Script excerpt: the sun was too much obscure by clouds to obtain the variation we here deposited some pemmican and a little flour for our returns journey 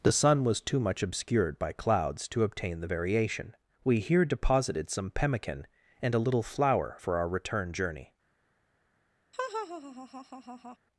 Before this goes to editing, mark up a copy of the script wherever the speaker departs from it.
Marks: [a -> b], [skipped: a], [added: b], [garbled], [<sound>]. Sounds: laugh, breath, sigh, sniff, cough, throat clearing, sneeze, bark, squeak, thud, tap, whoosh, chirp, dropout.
the sun was too much [obscure -> obscured] by clouds to obtain the variation we here deposited some pemmican and a little flour for our [returns -> return] journey [laugh]